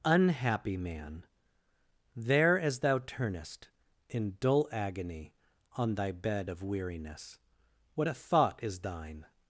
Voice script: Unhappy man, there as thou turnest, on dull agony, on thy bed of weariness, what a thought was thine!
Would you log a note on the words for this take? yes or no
yes